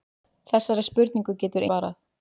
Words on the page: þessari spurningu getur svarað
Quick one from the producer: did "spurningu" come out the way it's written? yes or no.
yes